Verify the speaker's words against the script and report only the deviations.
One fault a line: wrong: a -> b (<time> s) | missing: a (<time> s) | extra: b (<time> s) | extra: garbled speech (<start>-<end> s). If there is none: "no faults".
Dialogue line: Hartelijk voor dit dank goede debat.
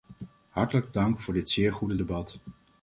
extra: dank (0.9 s)
wrong: dank -> zeer (1.5 s)